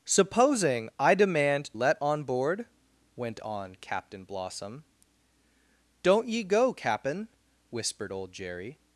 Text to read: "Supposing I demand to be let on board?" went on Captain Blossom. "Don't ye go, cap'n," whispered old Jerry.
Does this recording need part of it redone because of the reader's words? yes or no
yes